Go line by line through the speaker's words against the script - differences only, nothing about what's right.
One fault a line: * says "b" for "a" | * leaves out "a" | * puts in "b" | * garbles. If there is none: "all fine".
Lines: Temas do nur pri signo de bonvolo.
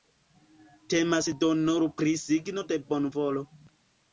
all fine